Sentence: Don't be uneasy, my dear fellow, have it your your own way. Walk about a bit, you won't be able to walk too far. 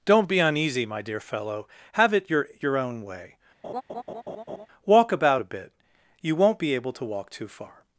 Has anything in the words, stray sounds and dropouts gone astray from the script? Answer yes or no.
yes